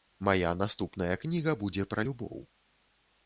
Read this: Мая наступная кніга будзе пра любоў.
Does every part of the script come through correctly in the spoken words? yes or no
yes